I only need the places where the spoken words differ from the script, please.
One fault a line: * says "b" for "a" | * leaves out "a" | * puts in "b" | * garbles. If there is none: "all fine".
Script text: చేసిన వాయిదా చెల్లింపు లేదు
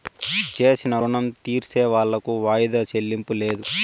* puts in "రుణం తీర్సేవాళ్లకు"